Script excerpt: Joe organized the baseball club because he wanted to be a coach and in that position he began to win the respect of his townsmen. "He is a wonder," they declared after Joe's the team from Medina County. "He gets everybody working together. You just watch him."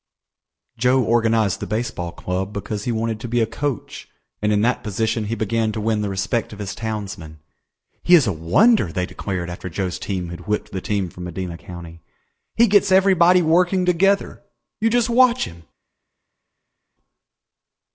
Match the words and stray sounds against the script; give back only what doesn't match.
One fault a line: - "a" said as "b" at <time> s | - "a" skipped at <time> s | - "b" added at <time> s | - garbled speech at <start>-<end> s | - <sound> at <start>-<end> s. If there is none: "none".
- "team had whipped" added at 10.0 s